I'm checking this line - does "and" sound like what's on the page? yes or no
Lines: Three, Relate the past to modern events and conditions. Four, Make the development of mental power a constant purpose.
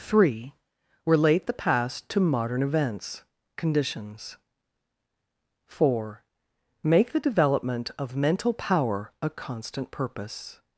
no